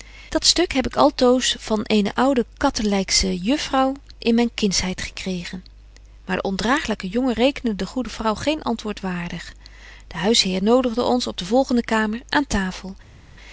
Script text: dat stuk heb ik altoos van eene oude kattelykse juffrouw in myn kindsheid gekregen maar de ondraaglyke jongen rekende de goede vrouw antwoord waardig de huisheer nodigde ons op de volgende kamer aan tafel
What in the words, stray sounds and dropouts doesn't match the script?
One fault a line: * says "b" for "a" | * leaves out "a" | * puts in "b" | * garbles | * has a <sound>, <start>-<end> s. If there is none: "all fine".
* puts in "geen"